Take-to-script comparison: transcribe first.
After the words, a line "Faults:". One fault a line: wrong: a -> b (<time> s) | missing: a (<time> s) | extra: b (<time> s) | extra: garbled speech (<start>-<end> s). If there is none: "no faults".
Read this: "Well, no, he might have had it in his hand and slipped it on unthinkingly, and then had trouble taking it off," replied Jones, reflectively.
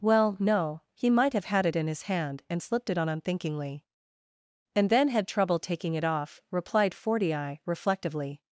"Well, no, he might have had it in his hand and slipped it on unthinkingly, and then had trouble taking it off," replied Fortii, reflectively.
Faults:
wrong: Jones -> Fortii (6.9 s)